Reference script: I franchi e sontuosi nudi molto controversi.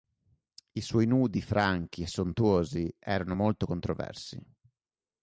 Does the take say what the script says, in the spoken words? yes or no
no